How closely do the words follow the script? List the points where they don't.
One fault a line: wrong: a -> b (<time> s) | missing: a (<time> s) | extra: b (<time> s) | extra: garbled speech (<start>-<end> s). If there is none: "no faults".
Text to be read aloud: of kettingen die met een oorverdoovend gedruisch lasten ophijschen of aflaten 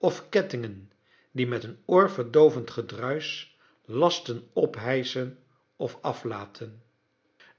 no faults